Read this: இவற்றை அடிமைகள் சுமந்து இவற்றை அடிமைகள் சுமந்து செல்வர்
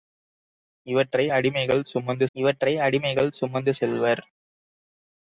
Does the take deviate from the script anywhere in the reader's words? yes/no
no